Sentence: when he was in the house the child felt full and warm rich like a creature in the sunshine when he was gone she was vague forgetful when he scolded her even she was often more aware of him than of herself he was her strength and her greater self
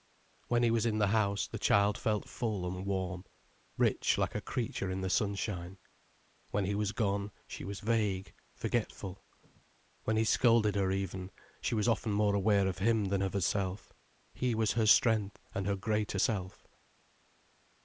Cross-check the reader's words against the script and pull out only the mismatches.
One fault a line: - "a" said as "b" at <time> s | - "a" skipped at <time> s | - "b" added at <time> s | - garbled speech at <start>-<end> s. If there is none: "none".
none